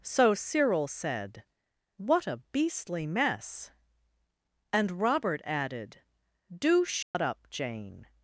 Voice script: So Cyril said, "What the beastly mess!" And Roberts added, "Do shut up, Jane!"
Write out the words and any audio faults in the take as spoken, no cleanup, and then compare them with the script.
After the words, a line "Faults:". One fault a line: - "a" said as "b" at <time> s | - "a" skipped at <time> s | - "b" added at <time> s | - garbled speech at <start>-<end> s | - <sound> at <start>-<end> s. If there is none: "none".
So Cyril said, "What a beastly mess!" And Robert added, "Do shut up, Jane!"
Faults:
- "the" said as "a" at 2.2 s
- "Roberts" said as "Robert" at 5.0 s
- dropout at 7.0-7.1 s